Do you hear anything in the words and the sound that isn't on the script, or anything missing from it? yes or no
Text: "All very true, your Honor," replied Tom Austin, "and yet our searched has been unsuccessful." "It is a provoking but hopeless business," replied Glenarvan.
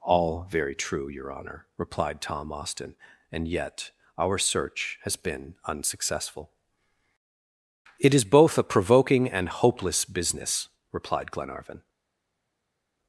yes